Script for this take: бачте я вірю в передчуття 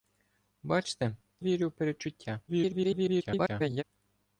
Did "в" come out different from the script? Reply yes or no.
no